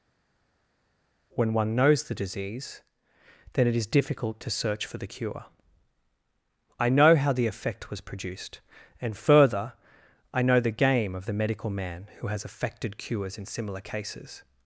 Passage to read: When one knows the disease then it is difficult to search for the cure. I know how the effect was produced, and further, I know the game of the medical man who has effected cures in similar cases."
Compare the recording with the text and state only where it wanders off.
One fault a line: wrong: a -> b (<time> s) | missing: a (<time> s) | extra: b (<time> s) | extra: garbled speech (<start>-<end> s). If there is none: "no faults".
no faults